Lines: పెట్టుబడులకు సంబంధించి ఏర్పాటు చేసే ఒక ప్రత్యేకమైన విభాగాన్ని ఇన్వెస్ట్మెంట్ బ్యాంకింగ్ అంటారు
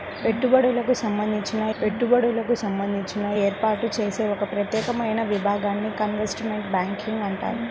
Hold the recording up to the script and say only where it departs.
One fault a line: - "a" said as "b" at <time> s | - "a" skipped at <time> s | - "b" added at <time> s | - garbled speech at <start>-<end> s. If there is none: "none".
- "పెట్టుబడులకు సంబంధించి" added at 1.8 s